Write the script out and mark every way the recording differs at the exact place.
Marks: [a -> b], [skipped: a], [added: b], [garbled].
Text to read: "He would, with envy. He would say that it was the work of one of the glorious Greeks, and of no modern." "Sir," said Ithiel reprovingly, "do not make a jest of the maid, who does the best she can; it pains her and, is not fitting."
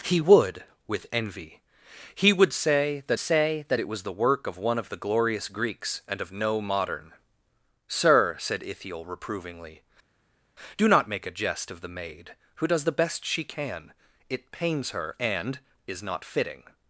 "He would, with envy. He would say that [added: say that] it was the work of one of the glorious Greeks, and of no modern." "Sir," said Ithiel reprovingly, "do not make a jest of the maid, who does the best she can; it pains her and, is not fitting."